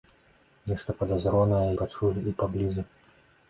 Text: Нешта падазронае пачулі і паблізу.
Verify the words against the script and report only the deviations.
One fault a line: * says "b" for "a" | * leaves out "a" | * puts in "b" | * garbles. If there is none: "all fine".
all fine